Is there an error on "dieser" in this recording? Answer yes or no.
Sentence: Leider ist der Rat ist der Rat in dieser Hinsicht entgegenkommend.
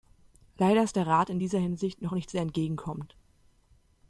yes